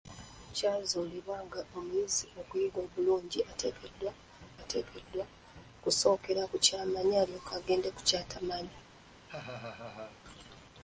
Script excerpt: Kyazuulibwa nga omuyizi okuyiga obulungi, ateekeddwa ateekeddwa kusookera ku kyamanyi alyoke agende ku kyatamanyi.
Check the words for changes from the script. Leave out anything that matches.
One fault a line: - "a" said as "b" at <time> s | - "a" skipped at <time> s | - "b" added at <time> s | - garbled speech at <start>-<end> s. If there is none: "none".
none